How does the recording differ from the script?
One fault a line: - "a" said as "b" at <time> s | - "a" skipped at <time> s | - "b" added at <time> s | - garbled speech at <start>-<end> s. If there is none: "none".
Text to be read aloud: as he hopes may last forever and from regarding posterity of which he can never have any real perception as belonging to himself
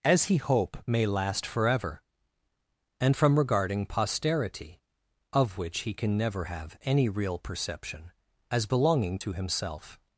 - "hopes" said as "hope" at 0.4 s